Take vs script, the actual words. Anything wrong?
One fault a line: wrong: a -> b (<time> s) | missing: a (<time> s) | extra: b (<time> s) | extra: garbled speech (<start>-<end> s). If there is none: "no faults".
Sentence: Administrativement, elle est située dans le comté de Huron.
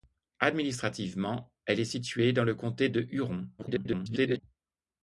extra: garbled speech (3.6-4.4 s)